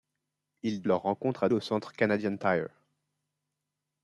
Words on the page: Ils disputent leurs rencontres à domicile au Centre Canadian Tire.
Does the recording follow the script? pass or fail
fail